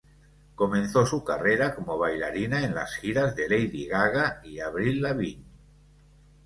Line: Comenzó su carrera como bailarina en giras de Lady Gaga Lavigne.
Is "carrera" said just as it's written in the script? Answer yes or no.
yes